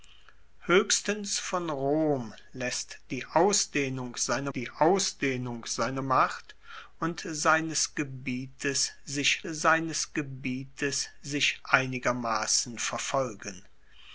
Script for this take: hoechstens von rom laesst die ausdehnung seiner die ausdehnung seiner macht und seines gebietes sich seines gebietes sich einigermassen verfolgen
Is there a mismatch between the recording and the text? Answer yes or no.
no